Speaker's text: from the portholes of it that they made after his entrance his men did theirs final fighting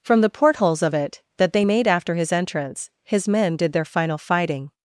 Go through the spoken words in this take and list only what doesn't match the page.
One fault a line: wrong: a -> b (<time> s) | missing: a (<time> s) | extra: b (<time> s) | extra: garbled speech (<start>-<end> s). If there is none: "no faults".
wrong: theirs -> their (3.7 s)